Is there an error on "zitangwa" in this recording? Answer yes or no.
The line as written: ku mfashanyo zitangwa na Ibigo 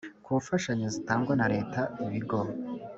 no